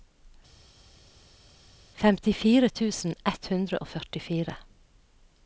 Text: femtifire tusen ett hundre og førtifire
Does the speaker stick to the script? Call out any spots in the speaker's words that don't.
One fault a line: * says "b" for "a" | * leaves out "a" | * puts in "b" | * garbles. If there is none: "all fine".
all fine